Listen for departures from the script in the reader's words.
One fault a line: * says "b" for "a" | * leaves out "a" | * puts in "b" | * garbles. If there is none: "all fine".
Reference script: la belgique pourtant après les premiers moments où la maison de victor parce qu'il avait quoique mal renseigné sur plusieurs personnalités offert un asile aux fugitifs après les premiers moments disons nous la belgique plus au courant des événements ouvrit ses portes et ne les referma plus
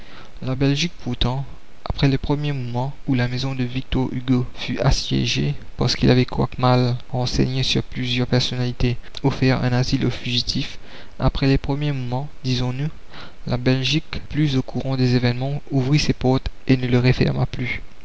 * puts in "hugo fut assiégée"